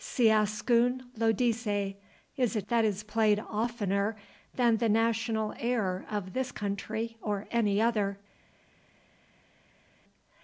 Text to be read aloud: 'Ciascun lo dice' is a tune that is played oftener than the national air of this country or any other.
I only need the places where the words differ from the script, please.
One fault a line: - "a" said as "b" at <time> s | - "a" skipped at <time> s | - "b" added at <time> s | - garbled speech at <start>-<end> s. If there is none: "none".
- "tune" skipped at 2.6 s